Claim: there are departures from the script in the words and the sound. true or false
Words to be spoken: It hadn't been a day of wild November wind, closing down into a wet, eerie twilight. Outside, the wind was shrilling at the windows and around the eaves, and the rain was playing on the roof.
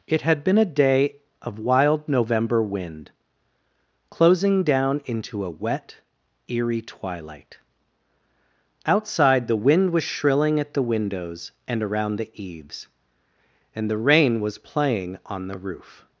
true